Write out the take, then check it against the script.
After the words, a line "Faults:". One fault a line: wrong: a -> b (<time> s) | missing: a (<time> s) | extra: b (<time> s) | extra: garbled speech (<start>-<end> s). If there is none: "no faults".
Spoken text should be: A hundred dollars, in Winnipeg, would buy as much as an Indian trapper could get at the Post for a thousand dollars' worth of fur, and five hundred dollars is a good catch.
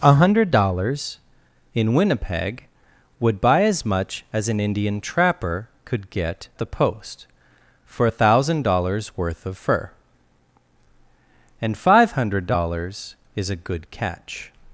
A hundred dollars, in Winnipeg, would buy as much as an Indian trapper could get the Post for a thousand dollars' worth of fur, and five hundred dollars is a good catch.
Faults:
missing: at (6.5 s)